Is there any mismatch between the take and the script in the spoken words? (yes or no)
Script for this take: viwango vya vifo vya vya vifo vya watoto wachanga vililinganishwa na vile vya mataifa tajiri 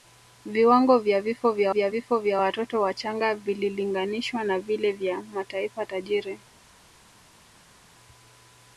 no